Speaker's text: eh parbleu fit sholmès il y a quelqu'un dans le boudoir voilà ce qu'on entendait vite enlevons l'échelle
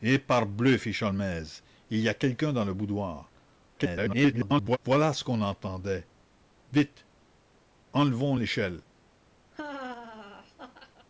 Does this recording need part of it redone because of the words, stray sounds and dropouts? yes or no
yes